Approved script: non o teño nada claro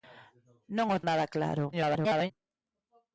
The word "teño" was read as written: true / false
false